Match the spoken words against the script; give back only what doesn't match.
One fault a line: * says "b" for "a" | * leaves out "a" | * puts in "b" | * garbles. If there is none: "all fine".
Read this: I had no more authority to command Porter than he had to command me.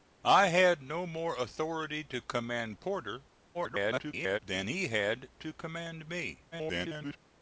* garbles
* garbles